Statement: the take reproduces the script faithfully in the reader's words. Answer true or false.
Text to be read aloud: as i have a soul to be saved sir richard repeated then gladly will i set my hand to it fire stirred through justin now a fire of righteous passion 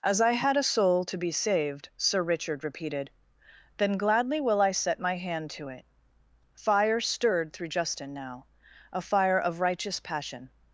false